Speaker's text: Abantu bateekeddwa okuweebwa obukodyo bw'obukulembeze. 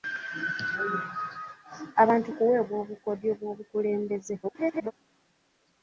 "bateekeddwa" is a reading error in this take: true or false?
true